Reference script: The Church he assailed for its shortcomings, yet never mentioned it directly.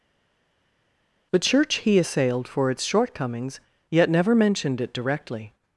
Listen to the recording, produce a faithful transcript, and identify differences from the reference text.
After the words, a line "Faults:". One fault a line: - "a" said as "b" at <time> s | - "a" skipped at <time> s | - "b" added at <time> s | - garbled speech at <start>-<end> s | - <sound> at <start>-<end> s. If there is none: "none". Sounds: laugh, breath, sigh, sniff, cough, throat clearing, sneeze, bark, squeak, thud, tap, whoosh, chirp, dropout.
The Church he assailed for its shortcomings, yet never mentioned it directly.
Faults:
none